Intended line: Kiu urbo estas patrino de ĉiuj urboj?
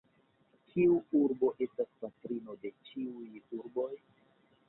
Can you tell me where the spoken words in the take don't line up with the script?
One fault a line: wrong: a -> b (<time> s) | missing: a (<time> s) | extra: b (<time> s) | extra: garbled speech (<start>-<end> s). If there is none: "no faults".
no faults